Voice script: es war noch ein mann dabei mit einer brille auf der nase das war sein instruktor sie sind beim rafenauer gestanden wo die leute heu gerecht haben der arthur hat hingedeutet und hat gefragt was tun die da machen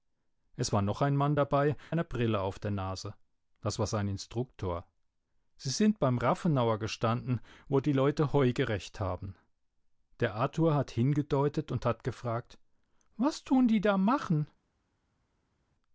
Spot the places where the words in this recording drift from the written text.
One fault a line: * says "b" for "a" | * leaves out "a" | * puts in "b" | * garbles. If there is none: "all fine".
* leaves out "mit"